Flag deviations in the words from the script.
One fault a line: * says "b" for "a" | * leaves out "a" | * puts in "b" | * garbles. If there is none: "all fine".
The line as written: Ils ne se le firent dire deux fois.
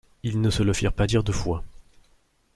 * puts in "pas"